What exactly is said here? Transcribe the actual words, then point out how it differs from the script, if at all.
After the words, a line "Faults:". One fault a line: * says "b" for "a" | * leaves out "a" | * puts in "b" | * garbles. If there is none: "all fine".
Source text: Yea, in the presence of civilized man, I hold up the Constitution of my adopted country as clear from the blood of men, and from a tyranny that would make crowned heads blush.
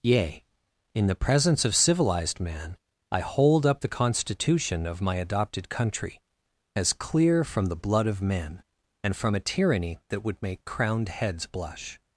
Yea, in the presence of civilized man, I hold up the Constitution of my adopted country as clear from the blood of men, and from a tyranny that would make crowned heads blush.
Faults:
all fine